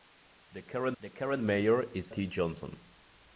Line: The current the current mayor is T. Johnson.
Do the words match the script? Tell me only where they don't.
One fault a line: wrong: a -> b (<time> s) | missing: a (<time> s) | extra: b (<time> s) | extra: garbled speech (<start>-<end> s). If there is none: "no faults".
no faults